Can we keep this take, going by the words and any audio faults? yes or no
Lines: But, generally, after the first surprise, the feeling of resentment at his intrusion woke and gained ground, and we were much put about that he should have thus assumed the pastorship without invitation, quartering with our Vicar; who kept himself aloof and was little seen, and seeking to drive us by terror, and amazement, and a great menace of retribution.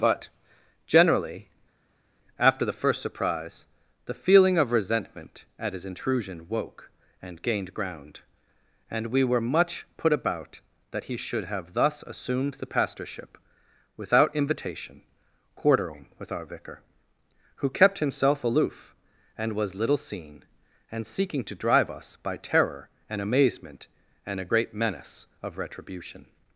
yes